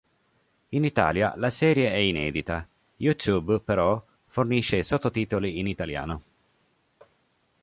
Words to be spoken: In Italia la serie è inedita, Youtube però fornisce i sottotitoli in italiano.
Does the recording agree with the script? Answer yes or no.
yes